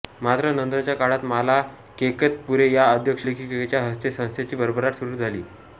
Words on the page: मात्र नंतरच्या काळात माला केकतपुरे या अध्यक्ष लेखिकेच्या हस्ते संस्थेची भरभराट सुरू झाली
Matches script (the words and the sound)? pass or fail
pass